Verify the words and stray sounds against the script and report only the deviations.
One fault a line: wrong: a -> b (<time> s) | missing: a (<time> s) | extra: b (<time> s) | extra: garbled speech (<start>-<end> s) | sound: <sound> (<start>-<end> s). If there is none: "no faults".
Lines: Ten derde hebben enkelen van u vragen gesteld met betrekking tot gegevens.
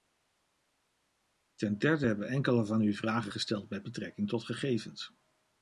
no faults